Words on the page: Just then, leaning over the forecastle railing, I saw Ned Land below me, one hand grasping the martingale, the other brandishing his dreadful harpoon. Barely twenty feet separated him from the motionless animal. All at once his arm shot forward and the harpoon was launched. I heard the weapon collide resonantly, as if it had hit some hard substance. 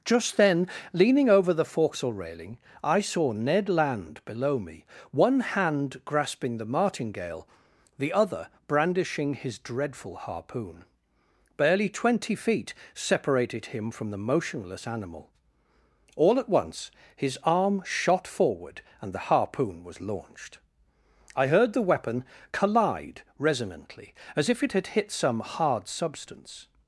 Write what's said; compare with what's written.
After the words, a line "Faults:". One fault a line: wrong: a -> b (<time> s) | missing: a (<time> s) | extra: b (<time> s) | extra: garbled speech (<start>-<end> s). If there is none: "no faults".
Just then, leaning over the forecastle railing, I saw Ned Land below me, one hand grasping the martingale, the other brandishing his dreadful harpoon. Barely twenty feet separated him from the motionless animal. All at once his arm shot forward and the harpoon was launched. I heard the weapon collide resonantly, as if it had hit some hard substance.
Faults:
no faults